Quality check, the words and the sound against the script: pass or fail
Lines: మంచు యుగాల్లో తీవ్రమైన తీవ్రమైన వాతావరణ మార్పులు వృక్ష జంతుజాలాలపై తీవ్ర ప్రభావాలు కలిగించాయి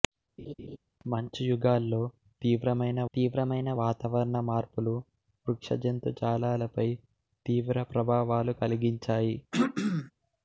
fail